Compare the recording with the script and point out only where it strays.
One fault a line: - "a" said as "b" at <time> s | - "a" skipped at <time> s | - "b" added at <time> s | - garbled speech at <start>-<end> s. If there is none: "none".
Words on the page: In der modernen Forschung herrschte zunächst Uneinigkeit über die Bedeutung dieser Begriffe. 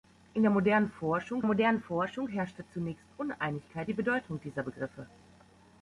- "modernen Forschung" added at 1.4 s
- "über" skipped at 3.9 s